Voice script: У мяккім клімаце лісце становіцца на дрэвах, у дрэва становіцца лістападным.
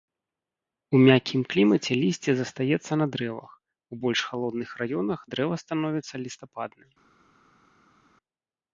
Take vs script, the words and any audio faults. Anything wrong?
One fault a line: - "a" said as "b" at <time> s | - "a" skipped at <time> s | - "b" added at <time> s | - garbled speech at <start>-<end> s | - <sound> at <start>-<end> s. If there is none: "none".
- "становіцца" said as "застаецца" at 2.4 s
- "больш халодных раёнах" added at 4.0 s